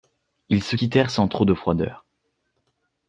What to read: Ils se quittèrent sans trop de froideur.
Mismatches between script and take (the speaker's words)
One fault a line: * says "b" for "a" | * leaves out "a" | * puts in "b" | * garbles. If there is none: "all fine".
all fine